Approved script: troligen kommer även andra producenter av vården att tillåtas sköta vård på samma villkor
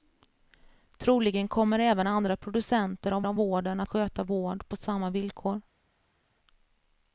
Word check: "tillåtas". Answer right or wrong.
wrong